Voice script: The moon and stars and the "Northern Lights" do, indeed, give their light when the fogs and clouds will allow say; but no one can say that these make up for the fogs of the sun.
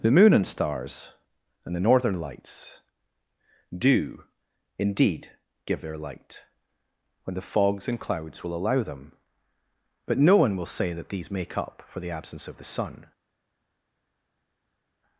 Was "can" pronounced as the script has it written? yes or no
no